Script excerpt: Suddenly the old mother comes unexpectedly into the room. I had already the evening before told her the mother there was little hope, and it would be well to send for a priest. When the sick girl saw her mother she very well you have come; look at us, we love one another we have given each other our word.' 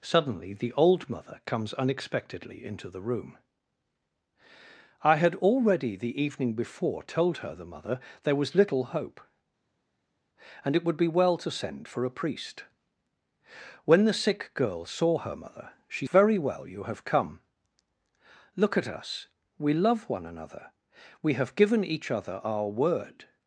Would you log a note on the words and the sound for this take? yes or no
no